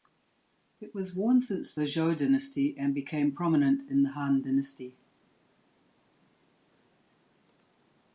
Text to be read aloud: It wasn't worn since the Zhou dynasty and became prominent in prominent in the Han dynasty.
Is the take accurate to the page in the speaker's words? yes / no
no